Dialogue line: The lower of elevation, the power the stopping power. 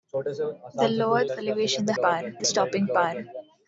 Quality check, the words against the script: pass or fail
pass